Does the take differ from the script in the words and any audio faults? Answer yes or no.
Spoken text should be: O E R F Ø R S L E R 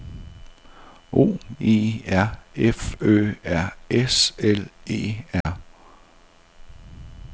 yes